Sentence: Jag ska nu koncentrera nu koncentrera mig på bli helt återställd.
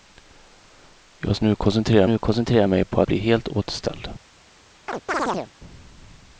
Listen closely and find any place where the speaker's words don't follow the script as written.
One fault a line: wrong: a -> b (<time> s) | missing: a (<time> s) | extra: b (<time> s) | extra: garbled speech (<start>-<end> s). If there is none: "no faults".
no faults